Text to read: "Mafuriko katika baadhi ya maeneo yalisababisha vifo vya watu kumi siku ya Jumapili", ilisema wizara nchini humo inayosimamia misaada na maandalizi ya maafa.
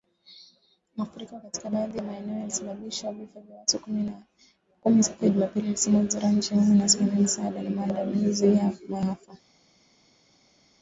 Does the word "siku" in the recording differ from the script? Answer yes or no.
no